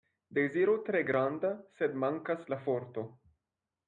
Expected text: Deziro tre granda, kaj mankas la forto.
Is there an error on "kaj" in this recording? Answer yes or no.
yes